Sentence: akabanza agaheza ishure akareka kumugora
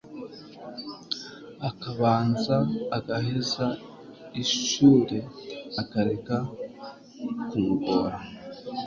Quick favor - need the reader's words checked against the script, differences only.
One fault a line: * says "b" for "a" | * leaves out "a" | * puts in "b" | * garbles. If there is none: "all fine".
all fine